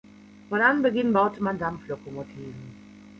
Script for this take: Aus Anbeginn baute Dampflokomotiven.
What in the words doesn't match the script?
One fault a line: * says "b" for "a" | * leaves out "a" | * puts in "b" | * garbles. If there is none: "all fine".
* says "Von" for "Aus"
* puts in "man"